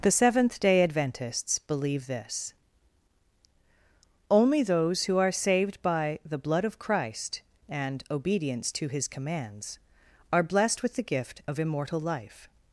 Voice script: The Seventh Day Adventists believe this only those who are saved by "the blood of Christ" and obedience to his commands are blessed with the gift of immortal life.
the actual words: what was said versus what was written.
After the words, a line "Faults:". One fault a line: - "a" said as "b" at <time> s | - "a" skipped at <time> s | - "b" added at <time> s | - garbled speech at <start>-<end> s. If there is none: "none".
The Seventh Day Adventists believe this only those who are saved by "the blood of Christ" and obedience to his commands are blessed with the gift of immortal life.
Faults:
none